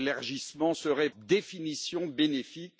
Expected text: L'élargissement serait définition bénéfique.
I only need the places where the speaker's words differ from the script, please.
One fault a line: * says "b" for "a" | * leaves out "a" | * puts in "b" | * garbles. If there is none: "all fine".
all fine